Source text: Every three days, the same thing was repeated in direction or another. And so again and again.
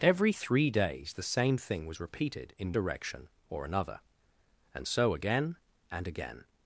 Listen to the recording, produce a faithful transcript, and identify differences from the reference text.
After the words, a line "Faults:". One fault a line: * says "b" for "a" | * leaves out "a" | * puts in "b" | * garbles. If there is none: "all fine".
Every three days, the same thing was repeated in direction or another. And so again and again.
Faults:
all fine